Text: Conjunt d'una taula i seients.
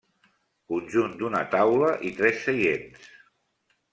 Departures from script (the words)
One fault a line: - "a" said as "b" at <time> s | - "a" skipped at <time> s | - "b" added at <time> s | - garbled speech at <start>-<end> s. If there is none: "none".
- "tres" added at 2.2 s